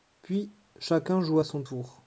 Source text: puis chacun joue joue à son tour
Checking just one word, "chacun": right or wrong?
right